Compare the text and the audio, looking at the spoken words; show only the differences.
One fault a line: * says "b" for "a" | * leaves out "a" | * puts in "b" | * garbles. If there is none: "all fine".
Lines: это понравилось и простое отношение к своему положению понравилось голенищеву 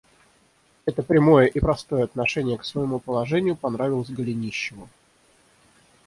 * says "прямое" for "понравилось"